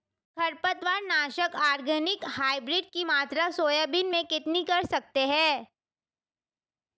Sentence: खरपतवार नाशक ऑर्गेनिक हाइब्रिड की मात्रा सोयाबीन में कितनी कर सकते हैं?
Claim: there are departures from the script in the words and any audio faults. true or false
false